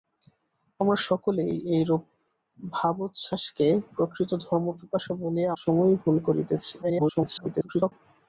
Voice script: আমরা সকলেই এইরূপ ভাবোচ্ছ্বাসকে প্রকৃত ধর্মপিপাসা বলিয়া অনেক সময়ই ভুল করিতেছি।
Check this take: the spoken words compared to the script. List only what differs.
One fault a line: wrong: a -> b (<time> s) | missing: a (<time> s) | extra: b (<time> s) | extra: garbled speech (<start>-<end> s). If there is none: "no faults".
missing: অনেক (5.5 s)
extra: garbled speech (6.8-7.9 s)